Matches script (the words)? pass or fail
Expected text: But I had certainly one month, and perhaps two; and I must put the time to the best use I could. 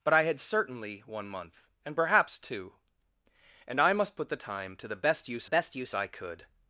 fail